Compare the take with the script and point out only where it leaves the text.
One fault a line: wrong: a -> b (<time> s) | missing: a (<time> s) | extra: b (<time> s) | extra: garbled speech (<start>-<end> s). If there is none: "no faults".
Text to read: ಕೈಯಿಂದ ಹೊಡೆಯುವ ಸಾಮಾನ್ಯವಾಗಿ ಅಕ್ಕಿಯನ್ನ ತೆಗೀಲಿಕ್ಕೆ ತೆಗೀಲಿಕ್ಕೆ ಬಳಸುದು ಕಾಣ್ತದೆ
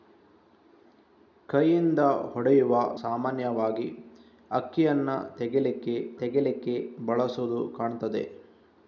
no faults